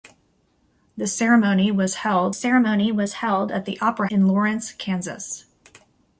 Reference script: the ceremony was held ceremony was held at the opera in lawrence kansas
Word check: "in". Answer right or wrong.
right